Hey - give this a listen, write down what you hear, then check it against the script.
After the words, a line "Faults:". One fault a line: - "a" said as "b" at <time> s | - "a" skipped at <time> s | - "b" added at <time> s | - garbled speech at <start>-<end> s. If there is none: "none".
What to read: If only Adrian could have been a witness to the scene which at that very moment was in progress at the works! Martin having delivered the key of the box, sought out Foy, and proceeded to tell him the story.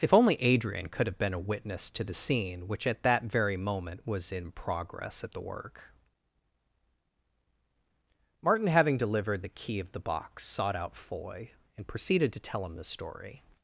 If only Adrian could have been a witness to the scene which at that very moment was in progress at the work! Martin having delivered the key of the box, sought out Foy, and proceeded to tell him the story.
Faults:
- "works" said as "work" at 5.4 s